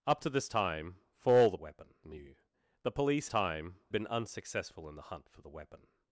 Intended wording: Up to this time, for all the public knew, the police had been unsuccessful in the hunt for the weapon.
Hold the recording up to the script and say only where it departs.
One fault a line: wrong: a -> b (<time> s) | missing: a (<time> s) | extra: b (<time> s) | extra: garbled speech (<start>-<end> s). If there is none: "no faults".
wrong: public -> weapon (1.6 s)
wrong: had -> time (3.3 s)